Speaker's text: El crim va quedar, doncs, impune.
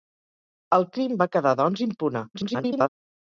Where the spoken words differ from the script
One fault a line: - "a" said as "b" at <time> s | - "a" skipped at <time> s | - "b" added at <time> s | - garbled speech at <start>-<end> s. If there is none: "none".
- garbled speech at 2.3-2.9 s